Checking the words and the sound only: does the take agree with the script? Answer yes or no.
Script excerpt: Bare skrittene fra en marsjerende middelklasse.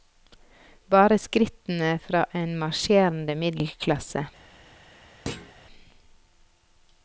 no